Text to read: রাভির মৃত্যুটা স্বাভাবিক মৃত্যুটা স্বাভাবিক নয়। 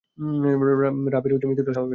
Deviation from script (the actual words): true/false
true